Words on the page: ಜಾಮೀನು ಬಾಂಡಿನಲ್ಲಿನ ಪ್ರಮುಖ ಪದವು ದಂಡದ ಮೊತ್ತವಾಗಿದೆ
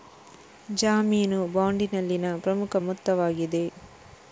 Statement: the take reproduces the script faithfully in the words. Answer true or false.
false